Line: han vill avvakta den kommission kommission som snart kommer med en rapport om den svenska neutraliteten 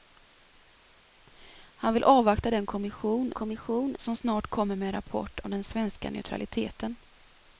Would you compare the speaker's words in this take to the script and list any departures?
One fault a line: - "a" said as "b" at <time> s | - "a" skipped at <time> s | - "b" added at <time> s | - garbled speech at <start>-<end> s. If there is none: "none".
none